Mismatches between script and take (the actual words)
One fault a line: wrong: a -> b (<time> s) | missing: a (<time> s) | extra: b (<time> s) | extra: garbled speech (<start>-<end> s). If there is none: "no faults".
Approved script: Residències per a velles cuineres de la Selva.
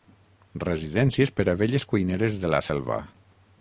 no faults